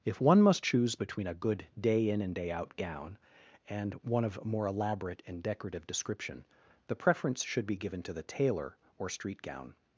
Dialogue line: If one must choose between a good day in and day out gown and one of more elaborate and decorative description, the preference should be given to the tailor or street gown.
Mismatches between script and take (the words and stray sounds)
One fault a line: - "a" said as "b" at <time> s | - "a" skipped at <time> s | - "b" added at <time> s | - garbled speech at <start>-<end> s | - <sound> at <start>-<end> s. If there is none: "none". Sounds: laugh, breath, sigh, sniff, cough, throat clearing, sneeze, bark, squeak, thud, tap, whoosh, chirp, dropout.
none